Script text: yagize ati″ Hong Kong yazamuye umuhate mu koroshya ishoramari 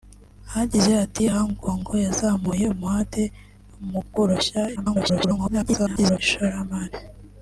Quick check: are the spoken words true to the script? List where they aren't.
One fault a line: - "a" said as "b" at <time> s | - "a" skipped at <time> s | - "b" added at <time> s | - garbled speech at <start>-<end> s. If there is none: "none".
- garbled speech at 4.8-6.2 s